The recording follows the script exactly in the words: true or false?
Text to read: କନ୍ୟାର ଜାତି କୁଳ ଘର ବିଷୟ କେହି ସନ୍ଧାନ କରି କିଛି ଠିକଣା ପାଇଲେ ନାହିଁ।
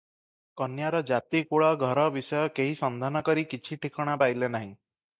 true